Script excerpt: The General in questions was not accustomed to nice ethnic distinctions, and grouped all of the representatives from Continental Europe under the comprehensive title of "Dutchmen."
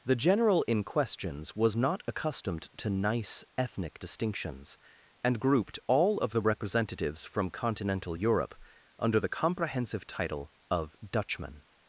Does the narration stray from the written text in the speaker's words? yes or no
no